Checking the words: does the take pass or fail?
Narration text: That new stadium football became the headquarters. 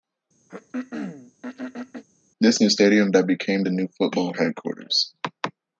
fail